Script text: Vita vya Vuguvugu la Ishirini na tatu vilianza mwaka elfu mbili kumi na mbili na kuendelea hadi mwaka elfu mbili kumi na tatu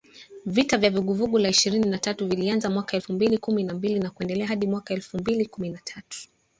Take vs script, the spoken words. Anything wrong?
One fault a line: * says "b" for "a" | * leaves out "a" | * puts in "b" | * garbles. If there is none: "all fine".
all fine